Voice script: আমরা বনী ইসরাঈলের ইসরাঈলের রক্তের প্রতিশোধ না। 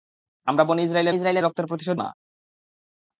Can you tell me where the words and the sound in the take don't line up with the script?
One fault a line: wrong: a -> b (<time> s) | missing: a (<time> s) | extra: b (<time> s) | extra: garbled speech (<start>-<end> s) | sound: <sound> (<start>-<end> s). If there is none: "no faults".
no faults